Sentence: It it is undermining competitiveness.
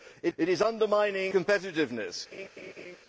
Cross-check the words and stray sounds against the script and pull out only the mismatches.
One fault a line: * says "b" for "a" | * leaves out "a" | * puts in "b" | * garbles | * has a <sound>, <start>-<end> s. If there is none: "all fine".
* has a laugh, 2.3-3.0 s